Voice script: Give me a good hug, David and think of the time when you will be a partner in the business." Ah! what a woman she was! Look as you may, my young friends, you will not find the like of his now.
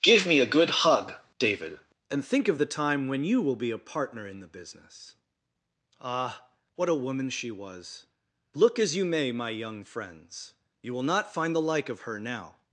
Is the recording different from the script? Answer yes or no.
yes